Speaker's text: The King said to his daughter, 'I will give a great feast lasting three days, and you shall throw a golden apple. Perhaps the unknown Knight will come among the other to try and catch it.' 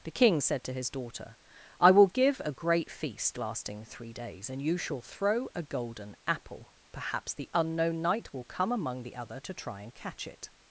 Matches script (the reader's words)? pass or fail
pass